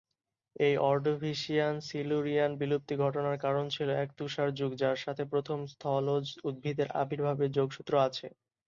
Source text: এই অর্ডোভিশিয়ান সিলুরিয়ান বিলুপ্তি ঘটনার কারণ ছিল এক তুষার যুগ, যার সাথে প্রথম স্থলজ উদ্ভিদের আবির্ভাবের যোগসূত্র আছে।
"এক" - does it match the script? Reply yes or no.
yes